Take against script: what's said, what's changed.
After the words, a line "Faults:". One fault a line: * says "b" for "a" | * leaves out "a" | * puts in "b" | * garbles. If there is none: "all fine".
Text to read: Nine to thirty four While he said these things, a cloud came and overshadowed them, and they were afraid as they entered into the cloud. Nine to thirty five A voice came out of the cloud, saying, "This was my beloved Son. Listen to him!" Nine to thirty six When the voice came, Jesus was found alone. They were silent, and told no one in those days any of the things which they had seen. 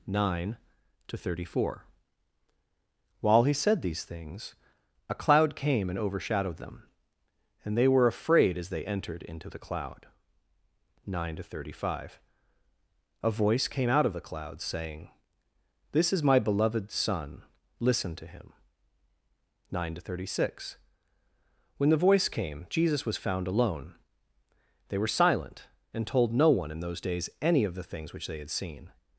Nine to thirty four While he said these things, a cloud came and overshadowed them, and they were afraid as they entered into the cloud. Nine to thirty five A voice came out of the cloud, saying, "This is my beloved Son. Listen to him!" Nine to thirty six When the voice came, Jesus was found alone. They were silent, and told no one in those days any of the things which they had seen.
Faults:
* says "is" for "was"